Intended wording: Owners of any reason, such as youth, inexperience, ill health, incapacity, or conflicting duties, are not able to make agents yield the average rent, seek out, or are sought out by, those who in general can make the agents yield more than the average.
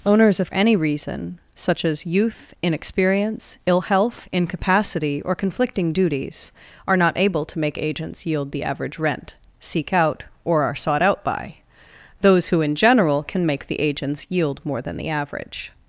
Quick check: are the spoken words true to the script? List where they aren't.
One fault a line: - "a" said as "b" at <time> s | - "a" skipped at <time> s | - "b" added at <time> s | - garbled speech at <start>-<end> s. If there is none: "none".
none